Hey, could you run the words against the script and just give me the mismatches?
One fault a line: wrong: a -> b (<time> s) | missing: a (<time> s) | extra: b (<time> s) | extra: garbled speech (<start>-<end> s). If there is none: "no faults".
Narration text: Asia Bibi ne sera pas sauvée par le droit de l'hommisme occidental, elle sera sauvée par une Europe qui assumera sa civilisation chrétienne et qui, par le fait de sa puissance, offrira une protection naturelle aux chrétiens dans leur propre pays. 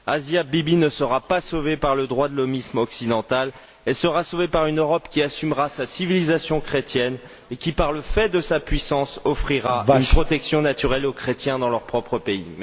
no faults